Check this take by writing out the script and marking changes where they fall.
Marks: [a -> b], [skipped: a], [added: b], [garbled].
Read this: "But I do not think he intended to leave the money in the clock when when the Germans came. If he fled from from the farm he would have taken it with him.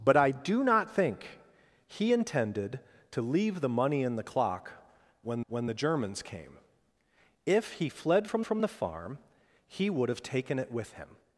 "But I do not think he intended to leave the money in the clock when when the Germans came. If he fled from from the farm he would have taken it with him.